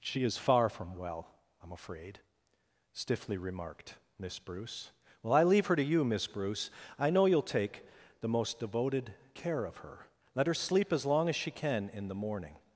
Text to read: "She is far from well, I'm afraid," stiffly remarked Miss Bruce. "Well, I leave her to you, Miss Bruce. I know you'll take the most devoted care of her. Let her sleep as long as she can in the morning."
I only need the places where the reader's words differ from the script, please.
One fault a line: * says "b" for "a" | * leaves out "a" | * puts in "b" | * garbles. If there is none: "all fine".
all fine